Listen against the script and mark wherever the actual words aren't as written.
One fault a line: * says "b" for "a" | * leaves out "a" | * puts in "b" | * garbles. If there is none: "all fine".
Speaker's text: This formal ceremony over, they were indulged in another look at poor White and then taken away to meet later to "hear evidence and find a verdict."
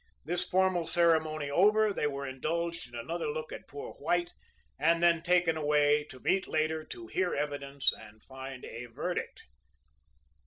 all fine